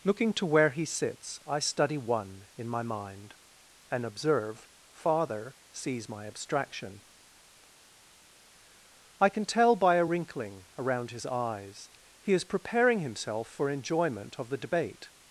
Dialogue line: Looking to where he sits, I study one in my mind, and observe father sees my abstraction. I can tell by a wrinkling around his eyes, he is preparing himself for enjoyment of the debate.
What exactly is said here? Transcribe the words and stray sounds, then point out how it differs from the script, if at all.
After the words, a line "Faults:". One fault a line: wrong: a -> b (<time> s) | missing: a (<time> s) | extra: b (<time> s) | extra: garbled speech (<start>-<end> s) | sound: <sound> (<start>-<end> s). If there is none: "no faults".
Looking to where he sits, I study one in my mind, and observe father sees my abstraction. I can tell by a wrinkling around his eyes, he is preparing himself for enjoyment of the debate.
Faults:
no faults